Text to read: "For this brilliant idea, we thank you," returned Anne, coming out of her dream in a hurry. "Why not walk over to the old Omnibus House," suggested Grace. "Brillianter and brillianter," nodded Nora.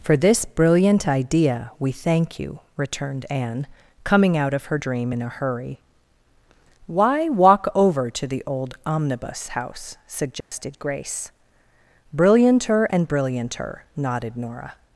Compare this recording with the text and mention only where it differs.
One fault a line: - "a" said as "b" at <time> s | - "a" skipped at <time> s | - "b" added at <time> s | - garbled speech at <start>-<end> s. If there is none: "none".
- "not" skipped at 7.3 s